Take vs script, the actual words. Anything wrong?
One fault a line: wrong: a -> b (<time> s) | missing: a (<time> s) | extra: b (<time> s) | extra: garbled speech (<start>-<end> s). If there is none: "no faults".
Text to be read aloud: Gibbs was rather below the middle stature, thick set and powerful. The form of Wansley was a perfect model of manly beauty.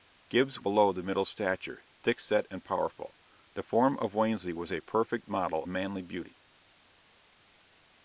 missing: was rather (0.6 s)
missing: of (5.6 s)